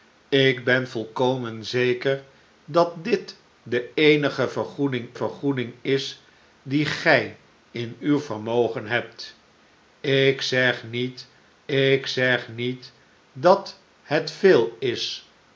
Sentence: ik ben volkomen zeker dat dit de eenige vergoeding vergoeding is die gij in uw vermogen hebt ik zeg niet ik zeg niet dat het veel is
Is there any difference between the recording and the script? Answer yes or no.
no